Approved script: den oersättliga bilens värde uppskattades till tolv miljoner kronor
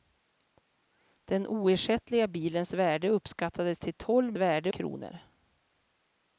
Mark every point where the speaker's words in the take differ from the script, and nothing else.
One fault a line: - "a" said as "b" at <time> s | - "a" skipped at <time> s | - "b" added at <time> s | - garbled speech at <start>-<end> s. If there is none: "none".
- "miljoner" said as "värde" at 4.4 s